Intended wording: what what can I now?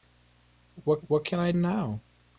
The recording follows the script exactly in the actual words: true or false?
true